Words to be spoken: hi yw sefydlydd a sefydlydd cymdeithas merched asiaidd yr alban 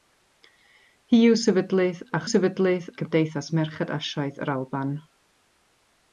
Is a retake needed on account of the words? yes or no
no